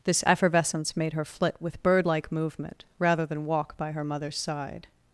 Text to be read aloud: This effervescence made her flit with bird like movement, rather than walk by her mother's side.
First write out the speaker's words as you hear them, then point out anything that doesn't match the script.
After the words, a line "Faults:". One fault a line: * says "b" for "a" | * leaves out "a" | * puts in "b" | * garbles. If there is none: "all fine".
This effervescence made her flit with bird like movement, rather than walk by her mother's side.
Faults:
all fine